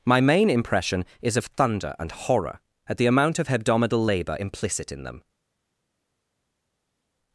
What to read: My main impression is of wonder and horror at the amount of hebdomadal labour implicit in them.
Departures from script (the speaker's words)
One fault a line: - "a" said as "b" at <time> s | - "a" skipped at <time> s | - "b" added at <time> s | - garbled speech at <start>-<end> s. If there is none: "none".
- "wonder" said as "thunder" at 1.5 s